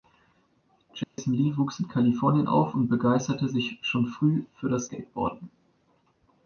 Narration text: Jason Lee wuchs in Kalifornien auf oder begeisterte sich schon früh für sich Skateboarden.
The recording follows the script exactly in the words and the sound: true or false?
false